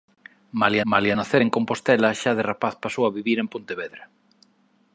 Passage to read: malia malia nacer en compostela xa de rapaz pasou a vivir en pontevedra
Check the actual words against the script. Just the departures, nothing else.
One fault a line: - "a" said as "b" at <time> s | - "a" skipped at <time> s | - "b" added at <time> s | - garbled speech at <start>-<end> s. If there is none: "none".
none